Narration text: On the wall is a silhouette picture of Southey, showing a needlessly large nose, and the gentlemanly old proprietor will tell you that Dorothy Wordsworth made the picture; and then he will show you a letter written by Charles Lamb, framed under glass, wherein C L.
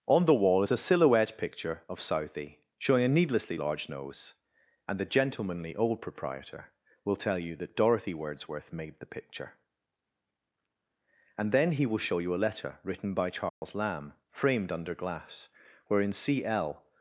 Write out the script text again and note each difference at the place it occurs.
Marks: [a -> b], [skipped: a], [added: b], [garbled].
On the wall is a silhouette picture of Southey, showing a needlessly large nose, and the gentlemanly old proprietor will tell you that Dorothy Wordsworth made the picture; and then he will show you a letter written by Charles Lamb, framed under glass, wherein C L.